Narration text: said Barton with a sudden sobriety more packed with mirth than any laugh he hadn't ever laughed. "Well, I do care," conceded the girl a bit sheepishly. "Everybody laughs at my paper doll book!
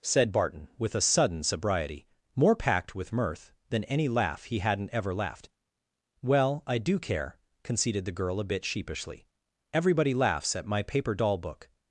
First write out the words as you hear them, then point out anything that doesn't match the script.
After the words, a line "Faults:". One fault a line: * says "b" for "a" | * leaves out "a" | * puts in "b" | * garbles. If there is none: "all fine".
said Barton with a sudden sobriety more packed with mirth than any laugh he hadn't ever laughed. "Well, I do care," conceded the girl a bit sheepishly. "Everybody laughs at my paper doll book!
Faults:
all fine